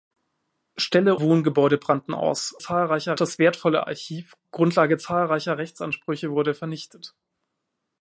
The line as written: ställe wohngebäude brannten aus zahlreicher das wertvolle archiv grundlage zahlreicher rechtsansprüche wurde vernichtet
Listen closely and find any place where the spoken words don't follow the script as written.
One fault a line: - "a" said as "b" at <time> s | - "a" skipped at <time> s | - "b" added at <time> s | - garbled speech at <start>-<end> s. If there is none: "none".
none